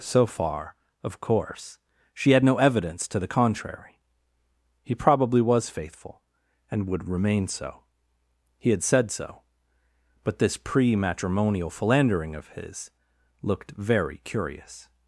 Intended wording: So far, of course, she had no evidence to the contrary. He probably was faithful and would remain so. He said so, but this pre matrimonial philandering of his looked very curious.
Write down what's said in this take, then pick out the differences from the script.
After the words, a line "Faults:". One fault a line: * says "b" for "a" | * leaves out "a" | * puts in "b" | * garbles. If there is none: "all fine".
So far, of course, she had no evidence to the contrary. He probably was faithful and would remain so. He had said so, but this pre matrimonial philandering of his looked very curious.
Faults:
* puts in "had"